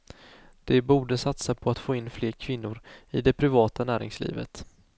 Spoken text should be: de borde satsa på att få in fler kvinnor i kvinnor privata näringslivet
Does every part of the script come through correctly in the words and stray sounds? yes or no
no